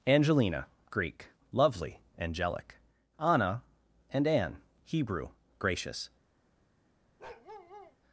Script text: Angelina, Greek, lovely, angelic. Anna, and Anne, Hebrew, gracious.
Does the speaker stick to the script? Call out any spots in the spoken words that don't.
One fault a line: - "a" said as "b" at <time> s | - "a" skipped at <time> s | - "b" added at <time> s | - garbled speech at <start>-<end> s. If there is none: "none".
none